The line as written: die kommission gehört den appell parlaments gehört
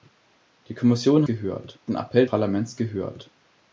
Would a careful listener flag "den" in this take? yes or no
no